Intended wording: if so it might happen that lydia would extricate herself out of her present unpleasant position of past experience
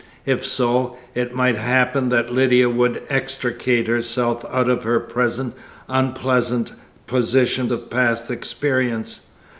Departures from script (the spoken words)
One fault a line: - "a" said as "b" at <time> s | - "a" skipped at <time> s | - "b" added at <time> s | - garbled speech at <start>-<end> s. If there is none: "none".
none